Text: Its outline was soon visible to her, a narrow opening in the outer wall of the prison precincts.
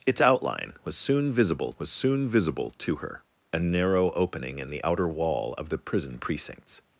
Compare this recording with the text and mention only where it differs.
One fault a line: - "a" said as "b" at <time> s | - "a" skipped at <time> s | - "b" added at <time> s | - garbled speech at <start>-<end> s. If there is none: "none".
- "was soon visible" added at 1.8 s